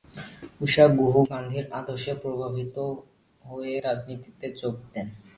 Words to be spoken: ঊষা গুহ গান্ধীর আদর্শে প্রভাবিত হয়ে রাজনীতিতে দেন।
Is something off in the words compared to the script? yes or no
yes